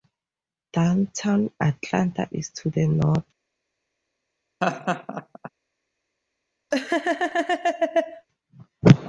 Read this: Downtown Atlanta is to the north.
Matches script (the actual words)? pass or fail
pass